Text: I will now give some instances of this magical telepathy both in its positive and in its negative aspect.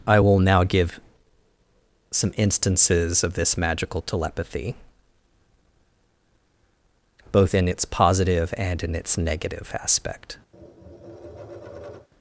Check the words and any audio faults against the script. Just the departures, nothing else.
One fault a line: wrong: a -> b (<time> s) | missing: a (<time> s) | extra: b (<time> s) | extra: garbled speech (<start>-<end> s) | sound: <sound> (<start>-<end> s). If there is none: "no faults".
sound: tap (10.5-12.1 s)